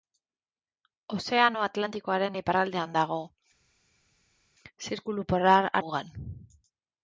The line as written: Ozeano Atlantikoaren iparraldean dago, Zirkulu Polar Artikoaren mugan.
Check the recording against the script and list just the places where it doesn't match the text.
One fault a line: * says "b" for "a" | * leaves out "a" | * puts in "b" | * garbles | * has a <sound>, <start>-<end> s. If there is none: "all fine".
* leaves out "Artikoaren"